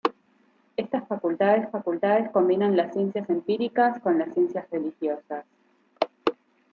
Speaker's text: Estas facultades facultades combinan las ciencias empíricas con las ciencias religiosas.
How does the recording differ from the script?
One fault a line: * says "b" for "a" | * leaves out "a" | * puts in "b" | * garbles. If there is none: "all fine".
all fine